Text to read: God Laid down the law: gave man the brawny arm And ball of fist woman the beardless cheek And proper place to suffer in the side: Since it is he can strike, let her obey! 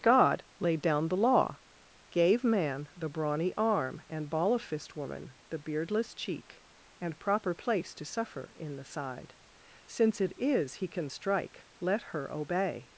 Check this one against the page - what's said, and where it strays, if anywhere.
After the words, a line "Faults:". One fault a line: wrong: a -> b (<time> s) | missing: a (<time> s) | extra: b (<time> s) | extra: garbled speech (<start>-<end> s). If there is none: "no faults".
God Laid down the law: gave man the brawny arm And ball of fist woman the beardless cheek And proper place to suffer in the side: Since it is he can strike, let her obey!
Faults:
no faults